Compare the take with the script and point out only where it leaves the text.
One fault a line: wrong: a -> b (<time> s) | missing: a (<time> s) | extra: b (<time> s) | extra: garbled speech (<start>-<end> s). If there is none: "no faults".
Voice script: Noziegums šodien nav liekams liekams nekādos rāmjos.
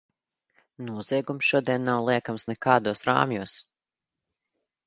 missing: liekams (2.5 s)